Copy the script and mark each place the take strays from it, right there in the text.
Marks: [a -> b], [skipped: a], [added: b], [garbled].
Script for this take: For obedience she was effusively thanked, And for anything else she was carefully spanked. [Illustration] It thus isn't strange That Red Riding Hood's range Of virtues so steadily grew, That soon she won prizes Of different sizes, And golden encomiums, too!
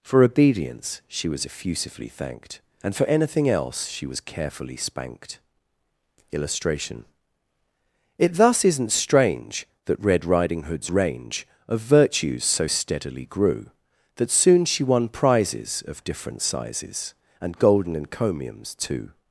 For obedience she was effusively thanked, And for anything else she was carefully spanked. [Illustration] It thus isn't strange That Red Riding Hood's range Of virtues so steadily grew, That soon she won prizes Of different sizes, And golden encomiums, too!